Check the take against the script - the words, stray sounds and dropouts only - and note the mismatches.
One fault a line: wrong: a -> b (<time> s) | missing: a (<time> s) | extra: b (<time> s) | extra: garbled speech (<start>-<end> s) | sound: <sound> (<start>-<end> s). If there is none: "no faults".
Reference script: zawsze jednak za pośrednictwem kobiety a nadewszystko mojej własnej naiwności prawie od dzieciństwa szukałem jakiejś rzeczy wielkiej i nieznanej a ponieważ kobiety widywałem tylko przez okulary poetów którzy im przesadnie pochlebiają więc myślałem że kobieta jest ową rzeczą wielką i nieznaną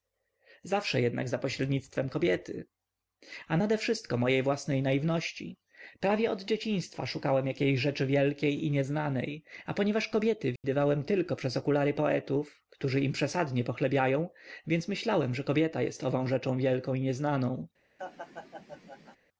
sound: dropout (10.6-10.6 s)
sound: laugh (18.0-19.2 s)